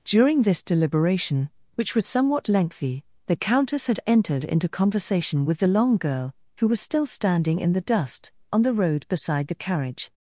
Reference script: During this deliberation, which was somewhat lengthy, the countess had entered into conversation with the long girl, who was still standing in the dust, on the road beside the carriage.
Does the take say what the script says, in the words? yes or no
yes